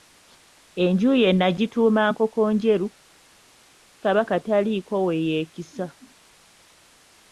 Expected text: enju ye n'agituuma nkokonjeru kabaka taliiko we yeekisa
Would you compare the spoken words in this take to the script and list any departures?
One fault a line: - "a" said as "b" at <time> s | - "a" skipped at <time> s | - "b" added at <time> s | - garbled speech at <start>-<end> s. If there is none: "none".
none